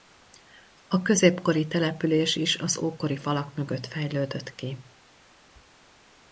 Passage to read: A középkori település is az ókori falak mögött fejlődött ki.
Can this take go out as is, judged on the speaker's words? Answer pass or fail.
pass